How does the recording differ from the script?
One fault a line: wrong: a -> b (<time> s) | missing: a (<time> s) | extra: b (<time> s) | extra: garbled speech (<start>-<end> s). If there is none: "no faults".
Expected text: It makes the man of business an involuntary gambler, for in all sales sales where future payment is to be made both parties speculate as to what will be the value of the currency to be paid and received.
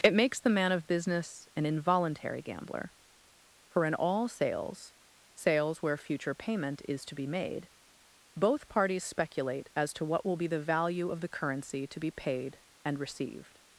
no faults